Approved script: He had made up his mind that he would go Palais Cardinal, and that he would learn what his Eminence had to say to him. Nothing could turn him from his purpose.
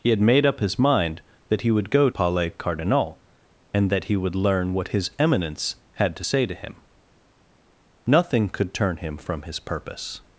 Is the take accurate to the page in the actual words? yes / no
yes